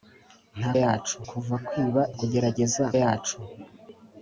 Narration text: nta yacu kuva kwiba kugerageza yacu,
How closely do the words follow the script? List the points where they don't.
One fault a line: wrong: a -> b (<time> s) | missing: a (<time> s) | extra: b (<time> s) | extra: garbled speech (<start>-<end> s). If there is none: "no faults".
no faults